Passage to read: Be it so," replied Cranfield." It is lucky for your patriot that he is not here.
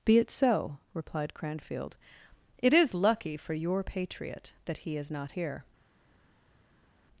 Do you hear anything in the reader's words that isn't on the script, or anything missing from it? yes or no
no